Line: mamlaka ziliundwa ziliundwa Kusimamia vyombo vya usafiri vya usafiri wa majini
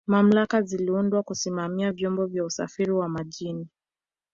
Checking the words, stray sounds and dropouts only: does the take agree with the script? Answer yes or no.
no